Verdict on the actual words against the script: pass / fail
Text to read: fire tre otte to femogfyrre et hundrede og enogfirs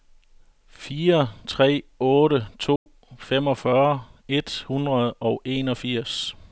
pass